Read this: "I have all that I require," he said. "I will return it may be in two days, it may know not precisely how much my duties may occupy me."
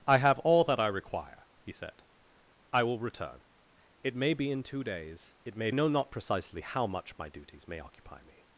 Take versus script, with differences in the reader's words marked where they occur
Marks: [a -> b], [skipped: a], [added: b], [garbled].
"I have all that I require," he said. "I will return it may be in two days, it may know not precisely how much my duties may occupy me."